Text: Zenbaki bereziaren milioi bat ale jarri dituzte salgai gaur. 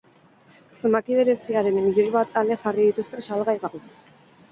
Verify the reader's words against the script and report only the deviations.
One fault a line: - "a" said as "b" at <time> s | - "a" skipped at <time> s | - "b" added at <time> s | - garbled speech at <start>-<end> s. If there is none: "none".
none